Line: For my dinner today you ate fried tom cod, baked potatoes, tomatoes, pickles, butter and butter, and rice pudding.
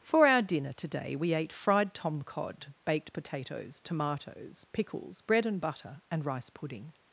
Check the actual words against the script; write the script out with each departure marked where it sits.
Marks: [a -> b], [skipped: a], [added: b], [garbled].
For [my -> our] dinner today [you -> we] ate fried tom cod, baked potatoes, tomatoes, pickles, [butter -> bread] and butter, and rice pudding.